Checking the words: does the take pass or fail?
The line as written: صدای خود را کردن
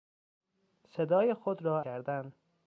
pass